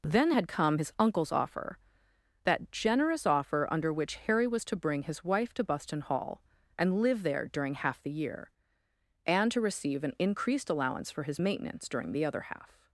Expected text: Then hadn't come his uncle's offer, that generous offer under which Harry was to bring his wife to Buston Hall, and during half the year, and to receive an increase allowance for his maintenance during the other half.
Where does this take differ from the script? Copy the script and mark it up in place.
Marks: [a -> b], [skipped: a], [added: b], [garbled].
Then [hadn't -> had] come his uncle's offer, that generous offer under which Harry was to bring his wife to Buston Hall, and [added: live there] during half the year, and to receive an [increase -> increased] allowance for his maintenance during the other half.